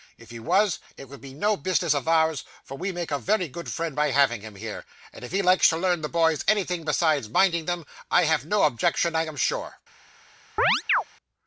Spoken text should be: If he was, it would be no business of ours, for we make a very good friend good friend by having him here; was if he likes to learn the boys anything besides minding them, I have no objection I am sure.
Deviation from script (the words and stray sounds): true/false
true